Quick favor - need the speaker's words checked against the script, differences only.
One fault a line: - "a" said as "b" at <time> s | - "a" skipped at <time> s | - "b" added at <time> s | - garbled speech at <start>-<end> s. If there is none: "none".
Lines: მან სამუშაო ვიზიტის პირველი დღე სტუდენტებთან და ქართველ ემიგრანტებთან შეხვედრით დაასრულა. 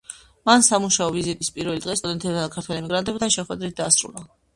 none